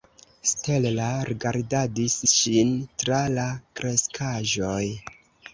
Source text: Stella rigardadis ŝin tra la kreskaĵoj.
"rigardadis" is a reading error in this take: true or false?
false